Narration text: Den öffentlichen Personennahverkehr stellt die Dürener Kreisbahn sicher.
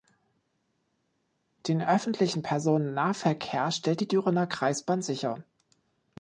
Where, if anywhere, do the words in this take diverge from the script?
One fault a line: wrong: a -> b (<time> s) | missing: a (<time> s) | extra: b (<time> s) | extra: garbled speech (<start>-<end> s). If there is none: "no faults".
no faults